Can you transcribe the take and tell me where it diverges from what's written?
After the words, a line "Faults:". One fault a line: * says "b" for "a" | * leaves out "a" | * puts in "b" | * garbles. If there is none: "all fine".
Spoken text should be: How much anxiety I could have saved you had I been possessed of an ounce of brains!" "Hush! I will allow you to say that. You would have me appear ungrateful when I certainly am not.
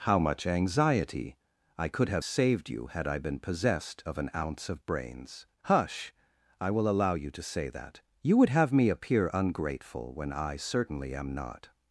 How much anxiety I could have saved you had I been possessed of an ounce of brains!" "Hush! I will allow you to say that. You would have me appear ungrateful when I certainly am not.
Faults:
all fine